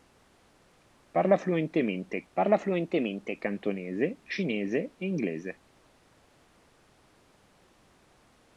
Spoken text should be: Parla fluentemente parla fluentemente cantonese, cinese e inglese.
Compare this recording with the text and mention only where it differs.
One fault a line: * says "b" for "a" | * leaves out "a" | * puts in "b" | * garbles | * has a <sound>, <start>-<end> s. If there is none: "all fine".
all fine